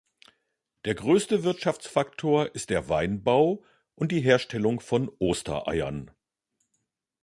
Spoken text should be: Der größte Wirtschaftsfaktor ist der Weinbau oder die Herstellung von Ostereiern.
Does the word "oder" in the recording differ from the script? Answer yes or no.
yes